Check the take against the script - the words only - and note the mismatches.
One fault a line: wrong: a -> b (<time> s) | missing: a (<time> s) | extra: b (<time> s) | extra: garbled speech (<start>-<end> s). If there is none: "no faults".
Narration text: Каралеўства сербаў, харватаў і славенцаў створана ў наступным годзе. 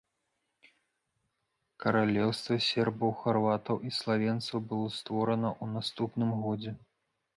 extra: было (4.7 s)